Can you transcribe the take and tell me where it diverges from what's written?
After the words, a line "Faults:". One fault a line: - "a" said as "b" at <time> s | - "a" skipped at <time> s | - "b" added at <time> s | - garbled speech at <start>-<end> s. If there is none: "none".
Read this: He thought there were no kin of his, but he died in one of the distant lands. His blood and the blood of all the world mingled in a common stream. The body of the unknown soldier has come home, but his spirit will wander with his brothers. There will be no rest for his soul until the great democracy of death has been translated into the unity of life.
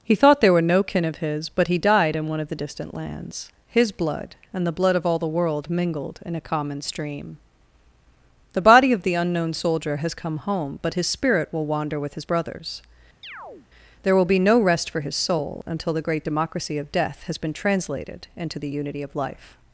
He thought there were no kin of his, but he died in one of the distant lands. His blood and the blood of all the world mingled in a common stream. The body of the unknown soldier has come home, but his spirit will wander with his brothers. There will be no rest for his soul until the great democracy of death has been translated into the unity of life.
Faults:
none